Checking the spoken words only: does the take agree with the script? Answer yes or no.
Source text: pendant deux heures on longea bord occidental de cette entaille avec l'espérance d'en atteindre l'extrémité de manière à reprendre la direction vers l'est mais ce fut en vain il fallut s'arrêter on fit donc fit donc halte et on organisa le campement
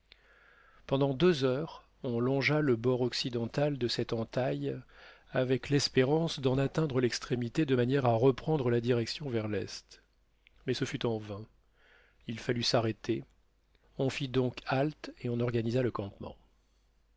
no